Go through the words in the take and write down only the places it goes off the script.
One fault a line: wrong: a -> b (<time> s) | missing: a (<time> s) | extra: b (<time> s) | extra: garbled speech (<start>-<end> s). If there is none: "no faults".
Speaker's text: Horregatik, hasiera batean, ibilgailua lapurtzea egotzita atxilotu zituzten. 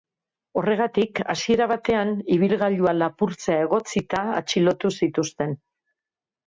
no faults